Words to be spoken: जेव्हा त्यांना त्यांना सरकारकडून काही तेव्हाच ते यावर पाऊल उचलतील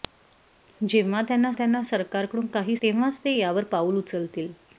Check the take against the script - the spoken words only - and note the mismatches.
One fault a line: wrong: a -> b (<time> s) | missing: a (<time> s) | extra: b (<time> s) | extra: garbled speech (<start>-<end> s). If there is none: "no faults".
no faults